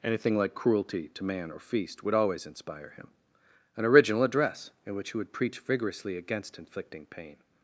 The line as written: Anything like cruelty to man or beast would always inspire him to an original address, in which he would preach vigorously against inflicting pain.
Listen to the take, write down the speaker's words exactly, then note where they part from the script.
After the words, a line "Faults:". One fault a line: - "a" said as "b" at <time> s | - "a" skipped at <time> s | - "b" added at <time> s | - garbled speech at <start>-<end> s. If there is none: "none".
Anything like cruelty to man or feast would always inspire him an original address, in which he would preach vigorously against inflicting pain.
Faults:
- "beast" said as "feast" at 1.6 s
- "to" skipped at 3.1 s